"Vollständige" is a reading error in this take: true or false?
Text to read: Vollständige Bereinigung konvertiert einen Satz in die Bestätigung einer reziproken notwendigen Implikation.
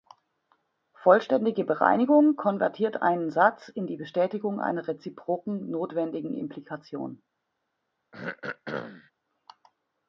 false